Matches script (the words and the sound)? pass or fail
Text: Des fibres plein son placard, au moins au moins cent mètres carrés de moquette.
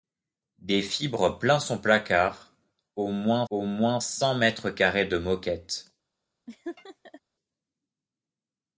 fail